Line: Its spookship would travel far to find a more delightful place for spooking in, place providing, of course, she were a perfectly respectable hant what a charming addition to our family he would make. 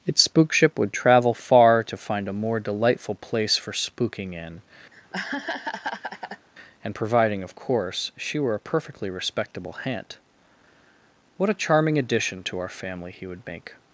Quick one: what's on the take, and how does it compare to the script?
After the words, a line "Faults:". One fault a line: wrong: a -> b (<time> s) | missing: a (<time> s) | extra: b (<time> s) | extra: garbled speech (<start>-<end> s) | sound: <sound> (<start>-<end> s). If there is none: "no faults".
Its spookship would travel far to find a more delightful place for spooking in, and providing, of course, she were a perfectly respectable hant what a charming addition to our family he would make.
Faults:
sound: laugh (4.9-6.5 s)
wrong: place -> and (6.8 s)